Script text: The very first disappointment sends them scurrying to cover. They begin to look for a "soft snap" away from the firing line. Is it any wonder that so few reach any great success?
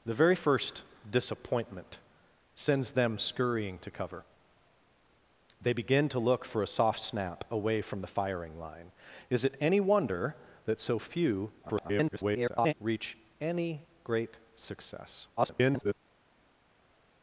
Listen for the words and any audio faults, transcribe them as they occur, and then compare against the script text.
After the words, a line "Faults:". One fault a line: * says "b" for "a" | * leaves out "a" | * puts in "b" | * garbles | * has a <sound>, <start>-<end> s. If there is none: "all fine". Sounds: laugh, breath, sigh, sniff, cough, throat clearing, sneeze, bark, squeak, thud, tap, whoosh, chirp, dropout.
The very first disappointment sends them scurrying to cover. They begin to look for a "soft snap" away from the firing line. Is it any wonder that so few [garbled] reach any great success? [garbled]
Faults:
* garbles
* garbles